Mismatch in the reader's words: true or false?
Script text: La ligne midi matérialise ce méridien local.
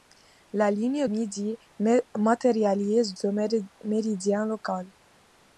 false